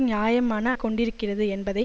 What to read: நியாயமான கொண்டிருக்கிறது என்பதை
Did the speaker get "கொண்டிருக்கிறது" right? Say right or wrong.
right